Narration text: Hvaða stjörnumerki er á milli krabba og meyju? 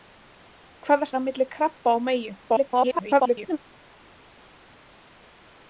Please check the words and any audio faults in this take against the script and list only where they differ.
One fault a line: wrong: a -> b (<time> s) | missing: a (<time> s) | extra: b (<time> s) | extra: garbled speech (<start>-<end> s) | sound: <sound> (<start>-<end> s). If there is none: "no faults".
missing: stjörnumerki (1.1 s)
extra: garbled speech (2.5-3.6 s)